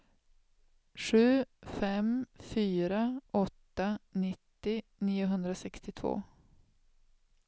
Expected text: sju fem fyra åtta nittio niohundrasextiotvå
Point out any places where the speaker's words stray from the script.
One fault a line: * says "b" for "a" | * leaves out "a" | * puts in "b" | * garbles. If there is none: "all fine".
all fine